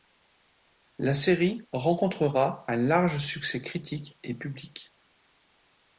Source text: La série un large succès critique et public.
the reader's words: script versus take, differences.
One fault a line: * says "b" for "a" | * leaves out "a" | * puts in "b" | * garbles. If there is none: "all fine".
* puts in "rencontrera"